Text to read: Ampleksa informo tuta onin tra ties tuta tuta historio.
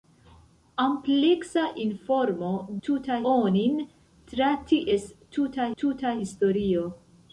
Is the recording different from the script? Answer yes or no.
no